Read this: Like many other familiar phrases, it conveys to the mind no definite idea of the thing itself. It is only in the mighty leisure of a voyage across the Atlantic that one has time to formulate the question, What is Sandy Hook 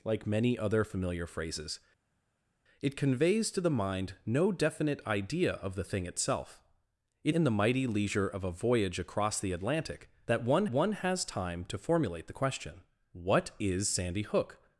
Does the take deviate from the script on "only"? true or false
true